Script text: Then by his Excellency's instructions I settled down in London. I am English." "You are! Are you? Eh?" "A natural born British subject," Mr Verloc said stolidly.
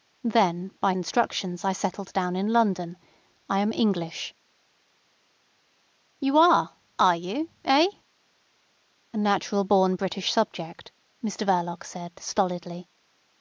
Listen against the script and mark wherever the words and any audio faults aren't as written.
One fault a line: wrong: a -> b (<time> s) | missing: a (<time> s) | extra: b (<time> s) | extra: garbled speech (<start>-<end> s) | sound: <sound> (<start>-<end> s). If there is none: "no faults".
missing: his Excellency's (0.9 s)